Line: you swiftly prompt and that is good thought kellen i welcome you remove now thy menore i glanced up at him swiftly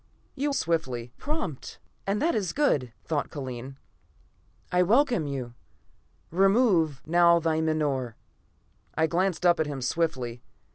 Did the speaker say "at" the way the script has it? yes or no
yes